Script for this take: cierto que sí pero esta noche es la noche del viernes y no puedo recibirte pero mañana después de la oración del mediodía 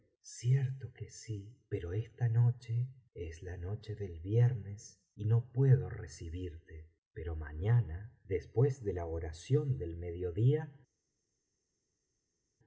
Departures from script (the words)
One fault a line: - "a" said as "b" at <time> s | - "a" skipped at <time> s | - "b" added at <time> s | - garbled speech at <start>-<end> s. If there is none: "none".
none